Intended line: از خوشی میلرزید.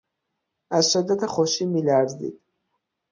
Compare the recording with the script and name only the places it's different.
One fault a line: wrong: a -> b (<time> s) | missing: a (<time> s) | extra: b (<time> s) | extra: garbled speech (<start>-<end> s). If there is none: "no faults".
extra: شدت (0.9 s)